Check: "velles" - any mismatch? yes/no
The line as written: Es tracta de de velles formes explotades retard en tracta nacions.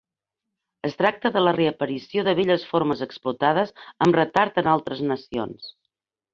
no